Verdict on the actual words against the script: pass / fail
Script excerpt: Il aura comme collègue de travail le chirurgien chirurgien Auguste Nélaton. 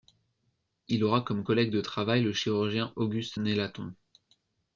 fail